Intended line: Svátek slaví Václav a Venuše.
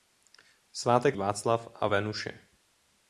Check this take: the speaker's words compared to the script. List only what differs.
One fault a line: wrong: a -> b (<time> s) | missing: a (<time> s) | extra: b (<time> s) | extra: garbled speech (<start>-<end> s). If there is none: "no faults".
missing: slaví (1.2 s)